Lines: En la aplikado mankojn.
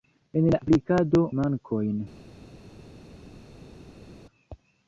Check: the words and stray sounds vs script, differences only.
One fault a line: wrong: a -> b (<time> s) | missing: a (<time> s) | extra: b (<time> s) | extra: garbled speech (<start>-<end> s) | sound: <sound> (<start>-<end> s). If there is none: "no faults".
no faults